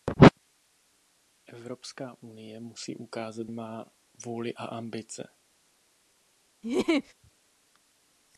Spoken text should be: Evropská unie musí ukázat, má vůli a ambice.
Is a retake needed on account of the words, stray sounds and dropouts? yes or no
yes